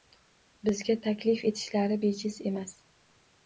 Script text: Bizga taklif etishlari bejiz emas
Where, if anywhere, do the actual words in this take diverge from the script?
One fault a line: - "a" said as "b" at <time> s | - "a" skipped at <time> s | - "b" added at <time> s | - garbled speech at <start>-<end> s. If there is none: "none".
none